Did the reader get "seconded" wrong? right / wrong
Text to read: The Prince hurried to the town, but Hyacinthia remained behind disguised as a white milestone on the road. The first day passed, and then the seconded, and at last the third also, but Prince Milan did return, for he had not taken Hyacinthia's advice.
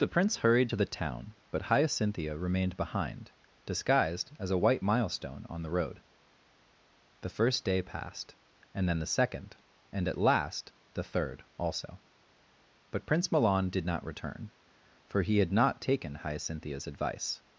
wrong